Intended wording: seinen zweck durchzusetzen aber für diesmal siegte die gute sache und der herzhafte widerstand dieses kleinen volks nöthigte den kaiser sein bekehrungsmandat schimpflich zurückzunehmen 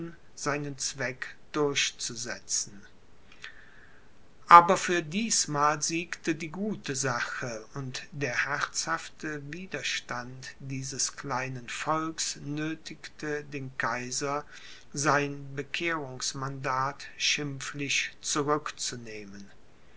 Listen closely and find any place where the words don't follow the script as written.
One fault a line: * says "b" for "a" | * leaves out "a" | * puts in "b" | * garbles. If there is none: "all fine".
all fine